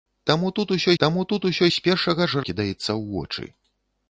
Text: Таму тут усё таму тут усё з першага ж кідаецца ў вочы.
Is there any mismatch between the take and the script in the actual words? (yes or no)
no